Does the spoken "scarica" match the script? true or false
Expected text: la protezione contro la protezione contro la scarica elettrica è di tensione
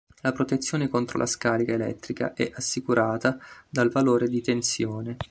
false